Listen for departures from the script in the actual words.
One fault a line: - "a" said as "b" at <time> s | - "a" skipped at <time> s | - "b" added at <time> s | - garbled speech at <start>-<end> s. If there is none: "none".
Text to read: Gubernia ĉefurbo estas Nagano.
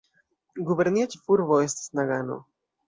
none